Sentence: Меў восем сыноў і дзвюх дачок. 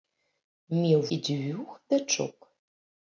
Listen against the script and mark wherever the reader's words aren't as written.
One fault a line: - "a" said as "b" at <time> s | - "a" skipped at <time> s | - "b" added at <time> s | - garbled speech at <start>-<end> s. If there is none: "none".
- "восем сыноў" skipped at 1.0 s